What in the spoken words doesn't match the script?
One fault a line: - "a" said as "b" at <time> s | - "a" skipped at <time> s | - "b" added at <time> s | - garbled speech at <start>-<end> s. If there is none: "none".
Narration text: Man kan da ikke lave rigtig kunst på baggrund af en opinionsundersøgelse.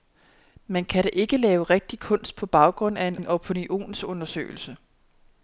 - "en" added at 3.2 s